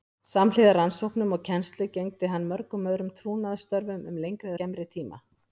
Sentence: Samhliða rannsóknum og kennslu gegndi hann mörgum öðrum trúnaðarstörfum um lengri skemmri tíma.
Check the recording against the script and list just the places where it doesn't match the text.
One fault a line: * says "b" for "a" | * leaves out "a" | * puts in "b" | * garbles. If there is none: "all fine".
all fine